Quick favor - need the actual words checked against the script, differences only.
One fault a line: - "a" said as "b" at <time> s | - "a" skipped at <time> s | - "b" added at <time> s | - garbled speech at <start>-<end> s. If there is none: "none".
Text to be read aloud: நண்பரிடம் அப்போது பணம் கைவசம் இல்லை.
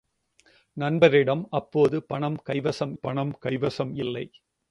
- "பணம் கைவசம்" added at 2.9 s